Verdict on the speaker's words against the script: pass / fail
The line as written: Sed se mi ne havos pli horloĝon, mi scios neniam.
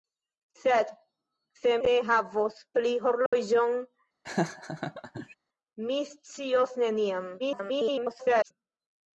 fail